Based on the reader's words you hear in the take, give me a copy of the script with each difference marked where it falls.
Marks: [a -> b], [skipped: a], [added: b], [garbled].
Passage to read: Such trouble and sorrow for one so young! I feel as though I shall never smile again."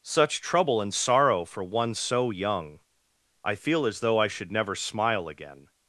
Such trouble and sorrow for one so young! I feel as though I [shall -> should] never smile again."